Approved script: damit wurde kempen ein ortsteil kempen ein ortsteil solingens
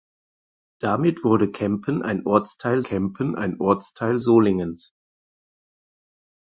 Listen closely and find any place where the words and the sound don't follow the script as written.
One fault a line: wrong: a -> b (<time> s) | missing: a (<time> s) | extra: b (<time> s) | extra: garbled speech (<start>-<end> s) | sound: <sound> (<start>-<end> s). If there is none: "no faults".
no faults